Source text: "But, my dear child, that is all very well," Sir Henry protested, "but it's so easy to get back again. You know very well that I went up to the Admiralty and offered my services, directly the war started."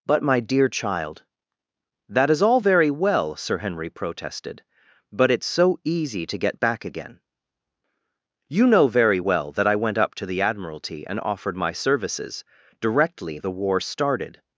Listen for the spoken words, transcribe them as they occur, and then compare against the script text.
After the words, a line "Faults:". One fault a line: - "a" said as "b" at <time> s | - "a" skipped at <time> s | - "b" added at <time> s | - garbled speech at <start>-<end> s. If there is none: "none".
"But, my dear child, that is all very well," Sir Henry protested, "but it's so easy to get back again. You know very well that I went up to the Admiralty and offered my services, directly the war started."
Faults:
none